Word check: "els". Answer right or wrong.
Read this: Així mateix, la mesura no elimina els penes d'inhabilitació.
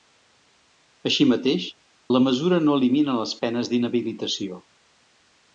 wrong